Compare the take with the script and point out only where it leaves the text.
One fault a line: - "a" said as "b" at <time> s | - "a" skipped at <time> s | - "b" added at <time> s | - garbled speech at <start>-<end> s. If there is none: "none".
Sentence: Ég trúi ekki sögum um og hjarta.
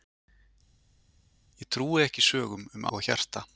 none